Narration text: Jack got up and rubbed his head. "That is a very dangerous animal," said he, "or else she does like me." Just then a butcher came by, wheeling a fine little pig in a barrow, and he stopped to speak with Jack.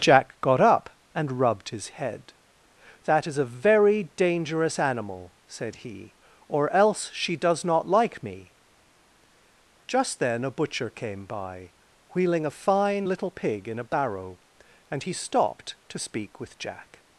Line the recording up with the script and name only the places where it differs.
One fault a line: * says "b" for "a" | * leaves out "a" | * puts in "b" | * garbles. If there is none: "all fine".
* puts in "not"